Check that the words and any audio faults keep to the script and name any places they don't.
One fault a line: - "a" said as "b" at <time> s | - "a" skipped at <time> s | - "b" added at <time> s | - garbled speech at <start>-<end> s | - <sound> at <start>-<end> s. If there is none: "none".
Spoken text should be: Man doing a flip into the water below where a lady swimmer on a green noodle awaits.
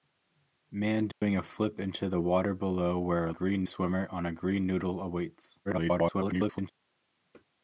- dropout at 1.1-1.2 s
- "lady" said as "green" at 3.3 s
- garbled speech at 5.6-6.7 s